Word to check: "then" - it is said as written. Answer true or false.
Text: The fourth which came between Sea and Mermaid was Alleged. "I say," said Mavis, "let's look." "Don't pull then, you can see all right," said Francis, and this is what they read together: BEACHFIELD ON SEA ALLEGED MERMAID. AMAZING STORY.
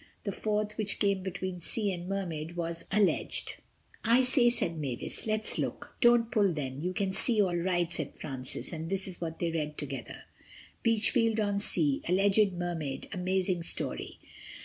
true